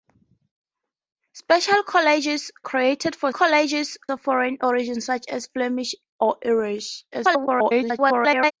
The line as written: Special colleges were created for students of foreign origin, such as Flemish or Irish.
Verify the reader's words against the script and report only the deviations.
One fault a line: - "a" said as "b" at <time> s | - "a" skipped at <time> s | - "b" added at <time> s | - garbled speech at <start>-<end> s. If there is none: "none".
- "were" skipped at 2.5 s
- "students" said as "colleges" at 3.3 s
- garbled speech at 7.1-8.5 s